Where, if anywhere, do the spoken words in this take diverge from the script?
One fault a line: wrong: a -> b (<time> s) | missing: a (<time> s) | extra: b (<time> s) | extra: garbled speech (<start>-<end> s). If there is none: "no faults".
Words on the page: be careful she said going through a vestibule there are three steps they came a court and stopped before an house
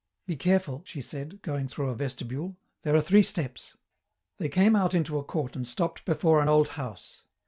extra: out into (4.8 s)
extra: old (6.5 s)